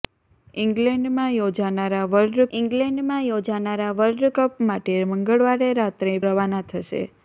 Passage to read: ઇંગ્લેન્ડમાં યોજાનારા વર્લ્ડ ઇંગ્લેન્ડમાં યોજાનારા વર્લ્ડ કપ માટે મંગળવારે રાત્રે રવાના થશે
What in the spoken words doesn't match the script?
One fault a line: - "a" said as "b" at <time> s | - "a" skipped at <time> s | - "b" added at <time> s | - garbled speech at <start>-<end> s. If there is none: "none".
none